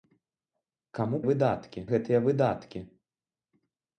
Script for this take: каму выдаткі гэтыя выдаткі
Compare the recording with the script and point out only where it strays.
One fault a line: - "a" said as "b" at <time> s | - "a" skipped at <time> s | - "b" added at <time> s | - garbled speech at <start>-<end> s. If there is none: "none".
none